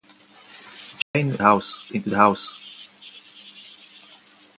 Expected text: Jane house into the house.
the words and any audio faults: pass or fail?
fail